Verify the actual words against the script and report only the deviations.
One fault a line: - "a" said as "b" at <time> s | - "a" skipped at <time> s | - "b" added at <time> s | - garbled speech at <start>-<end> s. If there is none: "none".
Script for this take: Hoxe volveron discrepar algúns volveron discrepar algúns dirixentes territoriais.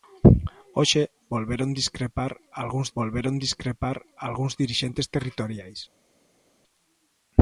none